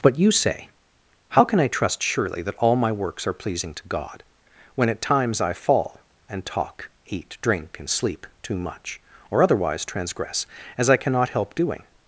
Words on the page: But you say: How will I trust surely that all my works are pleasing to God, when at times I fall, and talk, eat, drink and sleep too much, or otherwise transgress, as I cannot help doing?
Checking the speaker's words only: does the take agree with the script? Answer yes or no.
no